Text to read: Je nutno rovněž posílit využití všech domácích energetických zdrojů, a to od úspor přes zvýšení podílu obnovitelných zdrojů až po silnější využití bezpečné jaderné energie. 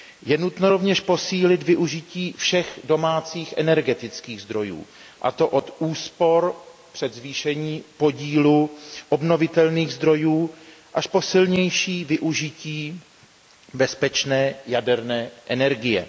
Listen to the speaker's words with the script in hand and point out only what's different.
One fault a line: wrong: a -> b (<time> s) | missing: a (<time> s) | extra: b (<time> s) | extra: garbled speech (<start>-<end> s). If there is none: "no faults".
no faults